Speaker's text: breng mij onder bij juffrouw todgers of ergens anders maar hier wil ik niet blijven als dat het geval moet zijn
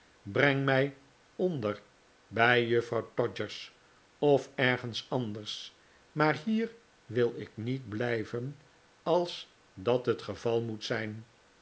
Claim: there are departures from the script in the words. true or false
false